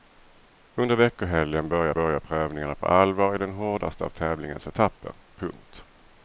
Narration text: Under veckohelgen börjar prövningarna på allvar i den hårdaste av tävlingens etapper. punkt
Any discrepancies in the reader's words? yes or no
yes